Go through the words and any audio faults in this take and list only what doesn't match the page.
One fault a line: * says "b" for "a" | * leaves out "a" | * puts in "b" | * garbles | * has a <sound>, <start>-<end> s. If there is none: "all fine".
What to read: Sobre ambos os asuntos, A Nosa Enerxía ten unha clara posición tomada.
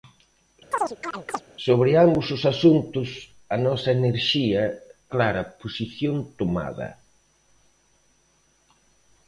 * has a chirp, 0.7-1.4 s
* leaves out "ten unha"